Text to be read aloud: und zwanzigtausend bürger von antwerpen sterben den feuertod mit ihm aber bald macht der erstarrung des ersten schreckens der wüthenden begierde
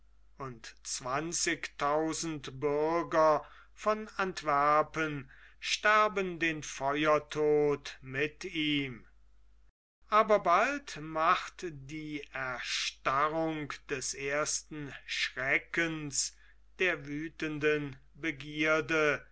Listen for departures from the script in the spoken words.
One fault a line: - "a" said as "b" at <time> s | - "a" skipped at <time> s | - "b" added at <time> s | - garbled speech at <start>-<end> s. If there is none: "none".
- "der" said as "die" at 11.7 s